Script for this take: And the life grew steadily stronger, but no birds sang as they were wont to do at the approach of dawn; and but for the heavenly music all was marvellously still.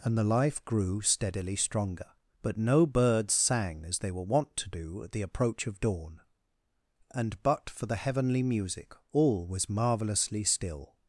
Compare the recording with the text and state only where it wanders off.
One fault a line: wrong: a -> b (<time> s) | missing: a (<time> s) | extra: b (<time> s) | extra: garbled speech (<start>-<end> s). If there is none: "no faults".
no faults